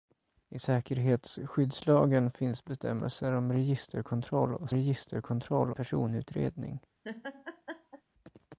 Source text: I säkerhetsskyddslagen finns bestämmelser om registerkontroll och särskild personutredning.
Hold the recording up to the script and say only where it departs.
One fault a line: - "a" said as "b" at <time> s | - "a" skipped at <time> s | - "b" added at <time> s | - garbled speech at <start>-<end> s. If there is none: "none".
- "särskild" said as "registerkontroll" at 4.7 s